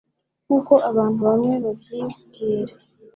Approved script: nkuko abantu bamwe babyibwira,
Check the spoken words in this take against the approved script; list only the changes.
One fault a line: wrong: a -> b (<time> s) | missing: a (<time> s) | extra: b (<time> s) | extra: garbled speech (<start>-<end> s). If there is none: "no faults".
no faults